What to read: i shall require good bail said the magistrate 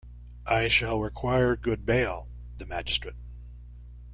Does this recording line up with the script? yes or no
no